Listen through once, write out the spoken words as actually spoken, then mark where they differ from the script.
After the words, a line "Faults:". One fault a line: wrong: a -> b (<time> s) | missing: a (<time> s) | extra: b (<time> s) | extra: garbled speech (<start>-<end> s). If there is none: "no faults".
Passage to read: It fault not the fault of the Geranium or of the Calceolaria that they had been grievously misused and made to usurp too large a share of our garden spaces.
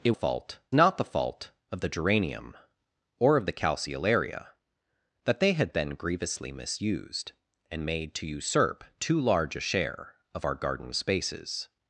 It fault not the fault of the Geranium or of the Calceolaria that they had been grievously misused and made to usurp too large a share of our garden spaces.
Faults:
no faults